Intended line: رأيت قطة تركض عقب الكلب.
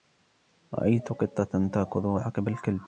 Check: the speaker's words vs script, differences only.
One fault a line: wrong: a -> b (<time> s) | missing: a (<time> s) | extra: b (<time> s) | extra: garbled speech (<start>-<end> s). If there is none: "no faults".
no faults